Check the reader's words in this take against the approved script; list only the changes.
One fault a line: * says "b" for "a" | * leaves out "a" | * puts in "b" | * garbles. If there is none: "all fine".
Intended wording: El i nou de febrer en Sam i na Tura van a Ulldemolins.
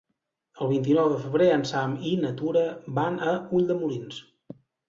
* puts in "vint"